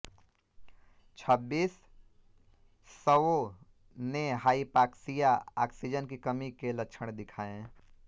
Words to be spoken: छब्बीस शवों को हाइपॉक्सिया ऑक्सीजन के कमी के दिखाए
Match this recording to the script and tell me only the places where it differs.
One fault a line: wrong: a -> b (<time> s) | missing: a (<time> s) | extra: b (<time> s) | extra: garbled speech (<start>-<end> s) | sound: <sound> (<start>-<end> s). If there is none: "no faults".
wrong: को -> ने (4.0 s)
wrong: के -> की (6.1 s)
extra: लक्षण (6.7 s)